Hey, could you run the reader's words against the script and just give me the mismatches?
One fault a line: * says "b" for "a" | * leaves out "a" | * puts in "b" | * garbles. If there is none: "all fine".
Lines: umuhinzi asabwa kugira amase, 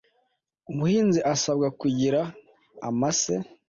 all fine